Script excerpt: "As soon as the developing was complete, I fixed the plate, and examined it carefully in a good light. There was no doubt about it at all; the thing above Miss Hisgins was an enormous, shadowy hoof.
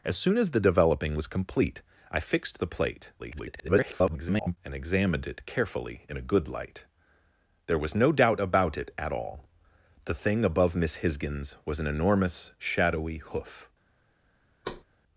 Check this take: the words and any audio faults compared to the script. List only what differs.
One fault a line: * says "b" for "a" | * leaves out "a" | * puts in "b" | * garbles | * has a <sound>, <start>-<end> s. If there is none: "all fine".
* garbles
* has a thud, 14.6-14.8 s